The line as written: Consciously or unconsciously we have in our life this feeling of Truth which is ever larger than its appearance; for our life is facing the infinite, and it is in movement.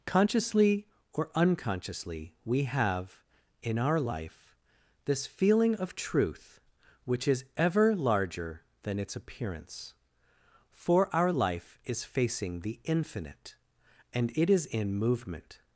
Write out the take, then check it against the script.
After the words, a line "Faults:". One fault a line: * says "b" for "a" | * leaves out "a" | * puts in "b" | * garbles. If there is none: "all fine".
Consciously or unconsciously we have in our life this feeling of Truth which is ever larger than its appearance; for our life is facing the infinite, and it is in movement.
Faults:
all fine